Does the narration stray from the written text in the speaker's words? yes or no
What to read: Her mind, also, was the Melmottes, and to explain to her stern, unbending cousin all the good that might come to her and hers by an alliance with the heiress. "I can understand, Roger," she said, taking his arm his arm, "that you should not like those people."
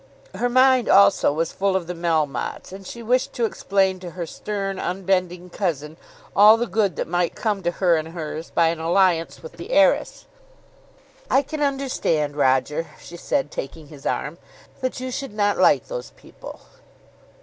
yes